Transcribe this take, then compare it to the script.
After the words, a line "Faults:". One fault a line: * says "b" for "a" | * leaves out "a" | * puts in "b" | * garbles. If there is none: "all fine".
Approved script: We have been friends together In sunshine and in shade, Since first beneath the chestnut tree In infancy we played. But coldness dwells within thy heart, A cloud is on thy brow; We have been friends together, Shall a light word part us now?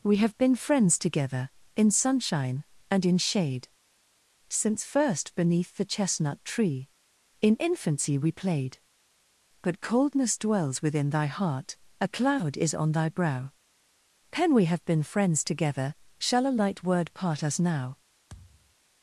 We have been friends together In sunshine and in shade, Since first beneath the chestnut tree In infancy we played. But coldness dwells within thy heart, A cloud is on thy brow; pen We have been friends together, Shall a light word part us now?
Faults:
* puts in "pen"